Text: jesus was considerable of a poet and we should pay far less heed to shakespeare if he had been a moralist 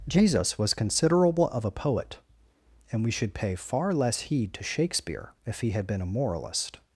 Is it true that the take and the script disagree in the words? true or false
false